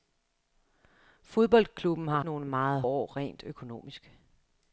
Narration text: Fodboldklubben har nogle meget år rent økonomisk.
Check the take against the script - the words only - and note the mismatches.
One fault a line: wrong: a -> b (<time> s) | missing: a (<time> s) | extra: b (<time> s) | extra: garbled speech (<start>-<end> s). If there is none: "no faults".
no faults